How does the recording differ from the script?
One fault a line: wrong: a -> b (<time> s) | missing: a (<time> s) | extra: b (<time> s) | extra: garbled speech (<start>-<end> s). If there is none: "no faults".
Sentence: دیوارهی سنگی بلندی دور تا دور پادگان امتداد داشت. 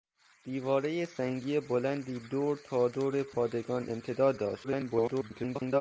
extra: garbled speech (4.6-5.8 s)